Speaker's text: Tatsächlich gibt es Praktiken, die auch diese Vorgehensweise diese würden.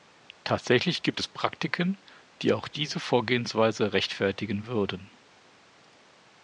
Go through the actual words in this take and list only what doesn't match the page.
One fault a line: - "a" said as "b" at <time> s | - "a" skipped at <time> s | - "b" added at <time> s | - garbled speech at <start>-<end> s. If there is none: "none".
- "diese" said as "rechtfertigen" at 3.9 s